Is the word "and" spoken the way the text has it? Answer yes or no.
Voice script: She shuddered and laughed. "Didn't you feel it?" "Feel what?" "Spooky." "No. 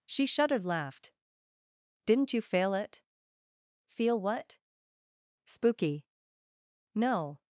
no